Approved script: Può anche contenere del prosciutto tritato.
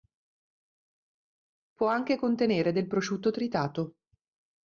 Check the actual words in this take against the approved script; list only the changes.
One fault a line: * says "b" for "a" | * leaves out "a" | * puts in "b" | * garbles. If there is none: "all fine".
all fine